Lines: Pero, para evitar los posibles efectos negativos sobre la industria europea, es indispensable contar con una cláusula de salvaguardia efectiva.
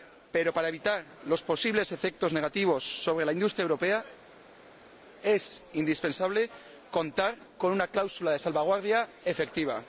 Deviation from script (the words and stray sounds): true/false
false